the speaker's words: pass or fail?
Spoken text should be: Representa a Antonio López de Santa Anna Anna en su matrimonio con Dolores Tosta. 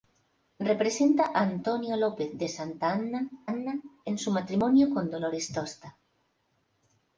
pass